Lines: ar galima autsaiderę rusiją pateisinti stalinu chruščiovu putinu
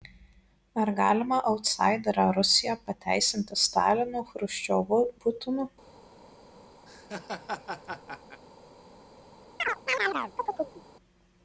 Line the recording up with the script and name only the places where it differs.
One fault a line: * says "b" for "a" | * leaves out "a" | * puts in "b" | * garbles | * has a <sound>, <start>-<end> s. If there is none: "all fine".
* has a laugh, 6.9-8.4 s
* has a chirp, 9.6-10.8 s